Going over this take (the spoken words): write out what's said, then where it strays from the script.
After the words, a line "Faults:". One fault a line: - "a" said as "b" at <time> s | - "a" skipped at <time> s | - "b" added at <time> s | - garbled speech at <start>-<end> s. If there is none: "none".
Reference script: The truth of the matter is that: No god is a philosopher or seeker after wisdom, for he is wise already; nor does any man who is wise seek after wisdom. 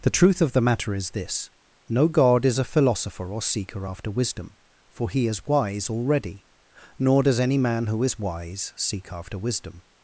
The truth of the matter is this: No god is a philosopher or seeker after wisdom, for he is wise already; nor does any man who is wise seek after wisdom.
Faults:
- "that" said as "this" at 1.1 s